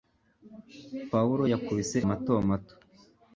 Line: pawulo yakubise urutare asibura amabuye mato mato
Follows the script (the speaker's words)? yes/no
no